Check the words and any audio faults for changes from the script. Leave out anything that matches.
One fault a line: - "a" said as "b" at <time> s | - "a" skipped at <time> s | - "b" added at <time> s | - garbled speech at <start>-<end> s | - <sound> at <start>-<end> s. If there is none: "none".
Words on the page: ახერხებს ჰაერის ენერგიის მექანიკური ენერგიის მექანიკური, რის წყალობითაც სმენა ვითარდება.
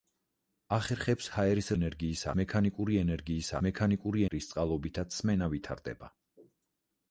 none